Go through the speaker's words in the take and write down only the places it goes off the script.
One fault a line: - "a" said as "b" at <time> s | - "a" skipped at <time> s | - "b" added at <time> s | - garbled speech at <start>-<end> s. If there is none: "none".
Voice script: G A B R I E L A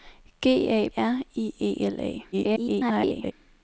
- "B" skipped at 0.9 s
- garbled speech at 2.3-3.3 s